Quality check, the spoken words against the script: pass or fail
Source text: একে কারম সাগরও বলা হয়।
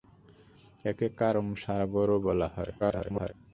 fail